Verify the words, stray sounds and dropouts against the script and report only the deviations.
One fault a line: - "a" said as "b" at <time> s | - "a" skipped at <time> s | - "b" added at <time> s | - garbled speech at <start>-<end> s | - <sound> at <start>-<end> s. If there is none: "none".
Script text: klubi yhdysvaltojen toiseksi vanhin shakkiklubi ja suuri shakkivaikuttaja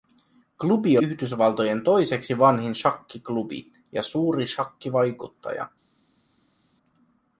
none